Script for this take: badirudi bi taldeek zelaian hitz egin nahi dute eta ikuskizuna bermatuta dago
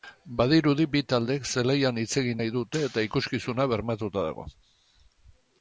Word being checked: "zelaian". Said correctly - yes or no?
yes